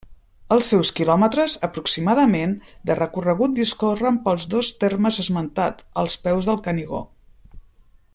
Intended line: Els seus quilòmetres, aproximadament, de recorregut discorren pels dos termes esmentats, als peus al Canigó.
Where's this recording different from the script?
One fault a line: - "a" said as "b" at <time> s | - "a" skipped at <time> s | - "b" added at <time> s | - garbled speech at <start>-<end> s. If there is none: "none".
- "al" said as "del" at 6.5 s